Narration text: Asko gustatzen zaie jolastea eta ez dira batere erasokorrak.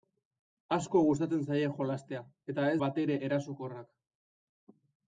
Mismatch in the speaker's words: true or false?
true